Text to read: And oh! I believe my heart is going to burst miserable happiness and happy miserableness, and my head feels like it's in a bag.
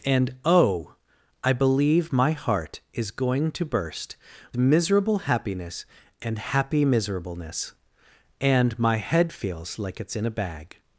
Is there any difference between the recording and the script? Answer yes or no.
no